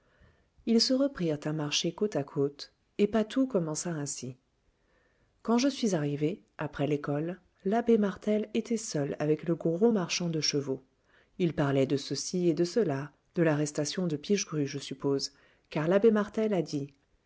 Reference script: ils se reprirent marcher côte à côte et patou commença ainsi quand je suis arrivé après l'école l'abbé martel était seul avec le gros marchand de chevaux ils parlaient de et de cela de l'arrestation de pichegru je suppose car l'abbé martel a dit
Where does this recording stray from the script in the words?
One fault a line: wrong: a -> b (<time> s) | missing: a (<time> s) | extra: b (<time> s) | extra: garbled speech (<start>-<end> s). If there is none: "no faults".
extra: à (1.4 s)
extra: ceci (12.0 s)